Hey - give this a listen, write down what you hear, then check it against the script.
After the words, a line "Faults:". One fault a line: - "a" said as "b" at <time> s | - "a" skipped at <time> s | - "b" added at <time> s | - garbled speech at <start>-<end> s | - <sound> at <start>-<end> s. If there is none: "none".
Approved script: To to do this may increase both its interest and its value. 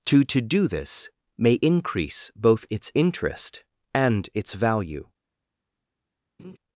To to do this may increase both its interest and its value.
Faults:
- laugh at 6.4-6.6 s